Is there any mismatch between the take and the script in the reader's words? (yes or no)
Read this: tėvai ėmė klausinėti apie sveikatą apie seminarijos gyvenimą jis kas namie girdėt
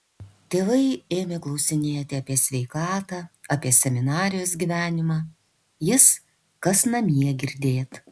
no